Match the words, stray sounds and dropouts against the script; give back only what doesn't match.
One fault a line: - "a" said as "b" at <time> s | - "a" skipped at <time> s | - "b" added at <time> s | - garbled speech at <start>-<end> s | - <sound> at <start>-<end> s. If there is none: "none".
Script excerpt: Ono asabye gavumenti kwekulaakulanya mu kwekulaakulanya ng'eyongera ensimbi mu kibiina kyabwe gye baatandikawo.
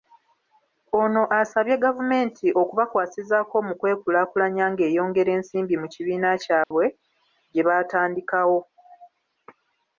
- "kwekulaakulanya" said as "okubakwasizaako" at 2.6 s
- dropout at 6.6-6.7 s